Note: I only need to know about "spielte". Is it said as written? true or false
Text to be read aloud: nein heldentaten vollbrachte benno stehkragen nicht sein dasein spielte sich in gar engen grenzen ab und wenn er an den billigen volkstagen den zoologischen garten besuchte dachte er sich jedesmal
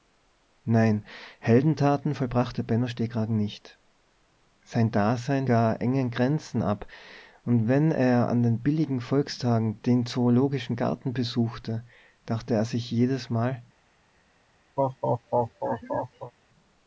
false